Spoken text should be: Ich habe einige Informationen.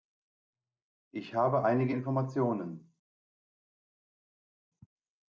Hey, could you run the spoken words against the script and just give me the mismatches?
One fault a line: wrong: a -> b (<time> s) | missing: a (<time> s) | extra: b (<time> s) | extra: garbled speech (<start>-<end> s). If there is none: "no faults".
no faults